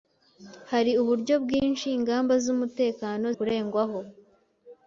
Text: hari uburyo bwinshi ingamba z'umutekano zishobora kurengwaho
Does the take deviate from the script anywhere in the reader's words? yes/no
yes